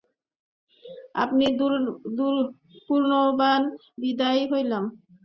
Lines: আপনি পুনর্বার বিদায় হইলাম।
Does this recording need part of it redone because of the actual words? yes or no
no